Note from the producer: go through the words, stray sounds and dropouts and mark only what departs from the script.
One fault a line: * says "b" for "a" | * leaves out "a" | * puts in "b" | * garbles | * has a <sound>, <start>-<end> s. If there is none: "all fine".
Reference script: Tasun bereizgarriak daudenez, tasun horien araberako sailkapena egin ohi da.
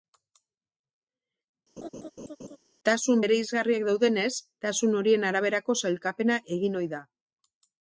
* has a laugh, 1.8-2.6 s